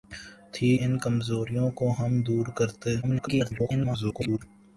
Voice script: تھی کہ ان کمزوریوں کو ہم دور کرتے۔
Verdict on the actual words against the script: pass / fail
fail